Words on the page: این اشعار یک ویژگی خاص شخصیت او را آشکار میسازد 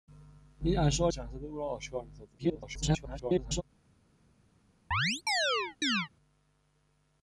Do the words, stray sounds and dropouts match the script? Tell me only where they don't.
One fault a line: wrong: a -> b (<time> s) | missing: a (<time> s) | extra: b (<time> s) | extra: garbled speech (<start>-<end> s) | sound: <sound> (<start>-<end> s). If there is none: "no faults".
missing: یک ویژگی خاص (1.1 s)
extra: garbled speech (2.4-3.6 s)
sound: chirp (4.9-6.1 s)